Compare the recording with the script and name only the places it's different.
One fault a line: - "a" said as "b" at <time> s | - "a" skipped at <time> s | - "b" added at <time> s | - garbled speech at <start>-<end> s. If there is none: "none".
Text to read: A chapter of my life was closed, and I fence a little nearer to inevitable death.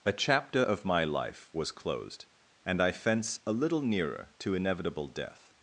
none